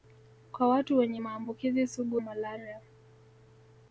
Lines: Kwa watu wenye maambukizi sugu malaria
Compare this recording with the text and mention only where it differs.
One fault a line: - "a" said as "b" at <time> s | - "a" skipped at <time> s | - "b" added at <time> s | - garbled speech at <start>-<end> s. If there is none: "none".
none